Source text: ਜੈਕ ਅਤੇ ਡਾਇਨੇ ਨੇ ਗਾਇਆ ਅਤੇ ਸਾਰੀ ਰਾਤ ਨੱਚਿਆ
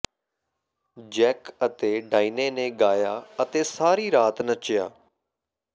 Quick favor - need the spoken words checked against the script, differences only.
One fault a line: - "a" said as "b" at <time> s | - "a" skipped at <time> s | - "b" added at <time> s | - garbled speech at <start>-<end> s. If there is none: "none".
none